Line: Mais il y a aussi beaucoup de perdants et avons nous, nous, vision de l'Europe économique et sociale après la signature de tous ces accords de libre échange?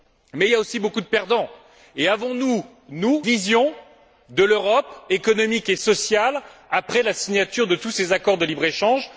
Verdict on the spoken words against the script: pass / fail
pass